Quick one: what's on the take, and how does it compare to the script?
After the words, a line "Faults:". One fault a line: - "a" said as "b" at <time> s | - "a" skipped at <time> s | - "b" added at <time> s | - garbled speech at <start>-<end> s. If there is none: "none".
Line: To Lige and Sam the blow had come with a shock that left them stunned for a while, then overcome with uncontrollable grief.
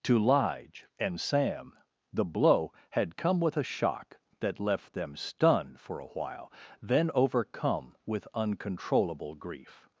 To Lige and Sam the blow had come with a shock that left them stunned for a while, then overcome with uncontrollable grief.
Faults:
none